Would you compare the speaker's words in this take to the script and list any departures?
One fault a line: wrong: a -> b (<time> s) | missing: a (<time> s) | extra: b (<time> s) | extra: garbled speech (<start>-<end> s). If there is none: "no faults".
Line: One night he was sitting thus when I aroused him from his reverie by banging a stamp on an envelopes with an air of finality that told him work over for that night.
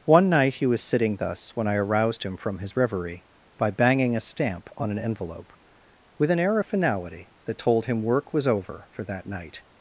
wrong: envelopes -> envelope (5.0 s)
extra: was (8.3 s)